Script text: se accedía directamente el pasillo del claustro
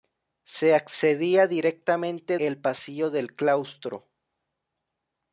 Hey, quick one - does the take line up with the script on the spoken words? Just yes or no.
yes